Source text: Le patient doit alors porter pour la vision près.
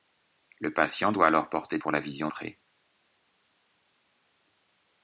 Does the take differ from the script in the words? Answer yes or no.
no